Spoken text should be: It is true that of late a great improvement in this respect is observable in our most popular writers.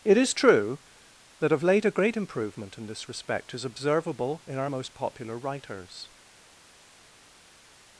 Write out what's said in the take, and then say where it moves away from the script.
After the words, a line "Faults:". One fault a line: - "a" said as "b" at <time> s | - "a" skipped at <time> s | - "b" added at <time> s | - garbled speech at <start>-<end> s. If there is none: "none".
It is true that of late a great improvement in this respect is observable in our most popular writers.
Faults:
none